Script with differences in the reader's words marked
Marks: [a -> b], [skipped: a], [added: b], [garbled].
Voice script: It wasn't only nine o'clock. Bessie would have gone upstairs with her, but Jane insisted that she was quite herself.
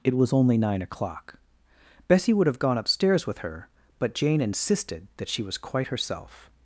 It [wasn't -> was] only nine o'clock. Bessie would have gone upstairs with her, but Jane insisted that she was quite herself.